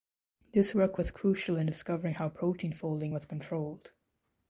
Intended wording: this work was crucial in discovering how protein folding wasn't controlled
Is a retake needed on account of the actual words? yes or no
yes